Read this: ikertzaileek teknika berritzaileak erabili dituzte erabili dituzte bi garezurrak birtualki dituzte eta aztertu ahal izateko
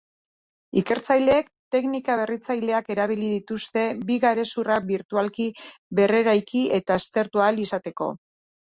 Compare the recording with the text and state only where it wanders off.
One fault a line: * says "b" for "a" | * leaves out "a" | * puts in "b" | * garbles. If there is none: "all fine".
* leaves out "erabili dituzte"
* says "berreraiki" for "dituzte"